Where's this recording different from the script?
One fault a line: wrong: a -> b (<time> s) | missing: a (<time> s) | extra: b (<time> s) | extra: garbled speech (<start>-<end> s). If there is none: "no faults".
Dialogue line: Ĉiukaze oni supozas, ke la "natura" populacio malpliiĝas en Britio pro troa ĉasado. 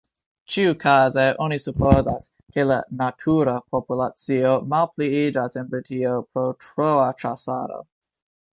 no faults